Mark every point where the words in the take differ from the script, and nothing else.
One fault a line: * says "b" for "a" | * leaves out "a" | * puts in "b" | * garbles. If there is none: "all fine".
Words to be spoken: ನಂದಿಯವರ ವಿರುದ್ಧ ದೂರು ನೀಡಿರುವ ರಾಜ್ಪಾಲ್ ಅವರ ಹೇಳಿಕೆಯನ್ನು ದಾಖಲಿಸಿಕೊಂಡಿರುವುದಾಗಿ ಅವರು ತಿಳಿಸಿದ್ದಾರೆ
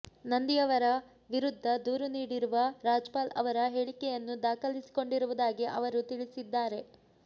all fine